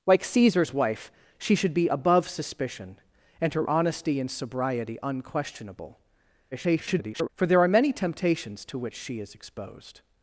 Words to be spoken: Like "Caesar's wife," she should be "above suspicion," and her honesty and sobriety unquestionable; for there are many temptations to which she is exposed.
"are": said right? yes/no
yes